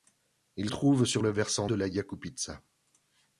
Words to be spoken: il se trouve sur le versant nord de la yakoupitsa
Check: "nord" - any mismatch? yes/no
yes